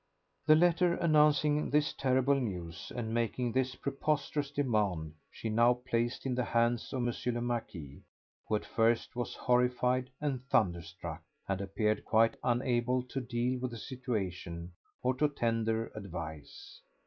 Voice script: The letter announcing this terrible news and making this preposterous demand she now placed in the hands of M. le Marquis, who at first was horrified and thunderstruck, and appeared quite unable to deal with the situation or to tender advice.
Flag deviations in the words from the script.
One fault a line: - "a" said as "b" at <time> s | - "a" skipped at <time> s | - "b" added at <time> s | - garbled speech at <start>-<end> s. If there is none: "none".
none